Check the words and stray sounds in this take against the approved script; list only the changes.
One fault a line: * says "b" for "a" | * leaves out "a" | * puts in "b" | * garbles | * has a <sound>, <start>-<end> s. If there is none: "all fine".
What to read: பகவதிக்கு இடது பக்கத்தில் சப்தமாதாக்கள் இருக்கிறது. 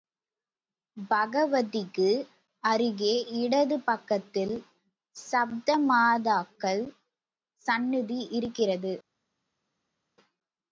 * puts in "அருகே"
* puts in "சந்நிதி"